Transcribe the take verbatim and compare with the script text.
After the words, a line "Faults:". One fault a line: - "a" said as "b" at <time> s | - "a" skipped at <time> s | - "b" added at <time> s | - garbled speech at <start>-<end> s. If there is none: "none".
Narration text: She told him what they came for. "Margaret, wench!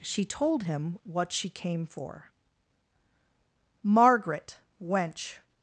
She told him what she came for. "Margaret, wench!
Faults:
- "they" said as "she" at 1.3 s